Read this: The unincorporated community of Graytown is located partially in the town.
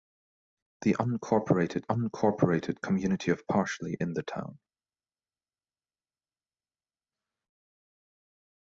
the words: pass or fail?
fail